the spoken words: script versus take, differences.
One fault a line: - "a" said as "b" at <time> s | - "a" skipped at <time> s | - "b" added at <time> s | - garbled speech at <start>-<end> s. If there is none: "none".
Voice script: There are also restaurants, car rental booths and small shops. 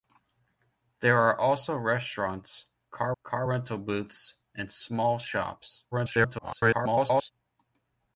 - "car" added at 3.2 s
- garbled speech at 5.9-7.3 s